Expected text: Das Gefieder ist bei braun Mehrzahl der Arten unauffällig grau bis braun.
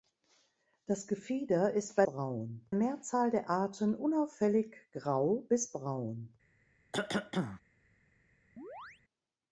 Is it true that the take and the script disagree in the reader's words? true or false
false